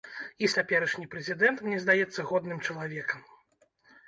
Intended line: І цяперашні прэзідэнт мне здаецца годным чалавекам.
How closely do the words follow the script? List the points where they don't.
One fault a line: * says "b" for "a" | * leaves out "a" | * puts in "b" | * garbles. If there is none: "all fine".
all fine